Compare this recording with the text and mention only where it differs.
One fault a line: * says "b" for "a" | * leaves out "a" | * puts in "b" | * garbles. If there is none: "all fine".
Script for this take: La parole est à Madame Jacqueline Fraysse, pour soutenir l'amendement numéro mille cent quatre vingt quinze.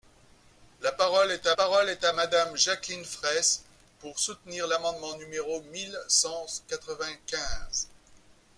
* puts in "parole est à"